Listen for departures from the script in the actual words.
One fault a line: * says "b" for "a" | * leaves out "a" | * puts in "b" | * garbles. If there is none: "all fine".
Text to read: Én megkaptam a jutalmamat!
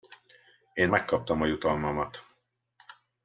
all fine